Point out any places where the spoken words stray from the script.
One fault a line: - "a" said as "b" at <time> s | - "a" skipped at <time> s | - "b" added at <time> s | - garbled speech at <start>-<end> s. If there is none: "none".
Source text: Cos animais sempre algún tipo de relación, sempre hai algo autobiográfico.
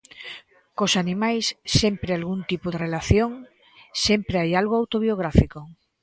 none